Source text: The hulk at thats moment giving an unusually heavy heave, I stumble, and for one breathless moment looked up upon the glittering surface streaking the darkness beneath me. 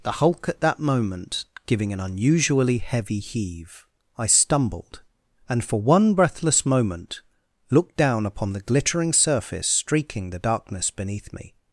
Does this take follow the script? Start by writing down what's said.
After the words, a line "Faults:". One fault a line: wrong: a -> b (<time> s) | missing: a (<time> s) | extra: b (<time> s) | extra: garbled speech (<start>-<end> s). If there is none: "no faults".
The hulk at that moment giving an unusually heavy heave, I stumbled, and for one breathless moment looked down upon the glittering surface streaking the darkness beneath me.
Faults:
wrong: thats -> that (0.6 s)
wrong: stumble -> stumbled (4.3 s)
wrong: up -> down (8.0 s)